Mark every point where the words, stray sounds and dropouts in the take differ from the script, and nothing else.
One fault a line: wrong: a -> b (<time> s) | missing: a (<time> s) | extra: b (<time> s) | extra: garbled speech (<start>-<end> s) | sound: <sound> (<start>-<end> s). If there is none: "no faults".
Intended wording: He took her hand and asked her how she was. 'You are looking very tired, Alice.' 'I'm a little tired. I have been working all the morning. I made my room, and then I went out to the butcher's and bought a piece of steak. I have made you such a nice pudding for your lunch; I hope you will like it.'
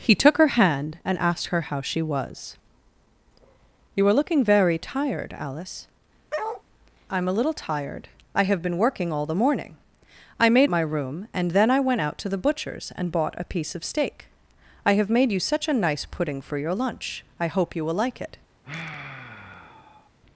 sound: bark (6.3-6.6 s)
sound: sigh (18.6-20.1 s)